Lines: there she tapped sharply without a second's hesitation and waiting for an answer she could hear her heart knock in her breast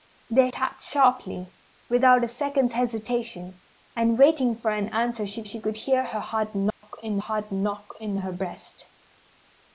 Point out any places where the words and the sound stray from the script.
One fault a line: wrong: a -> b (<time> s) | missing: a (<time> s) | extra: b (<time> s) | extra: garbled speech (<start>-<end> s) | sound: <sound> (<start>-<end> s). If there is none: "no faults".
missing: she (0.5 s)
extra: she (5.4 s)
sound: dropout (6.7-6.8 s)
extra: heart knock in (7.2 s)